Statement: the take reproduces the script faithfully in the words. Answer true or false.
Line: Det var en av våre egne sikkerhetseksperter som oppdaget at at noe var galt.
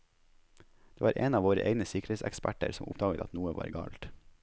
false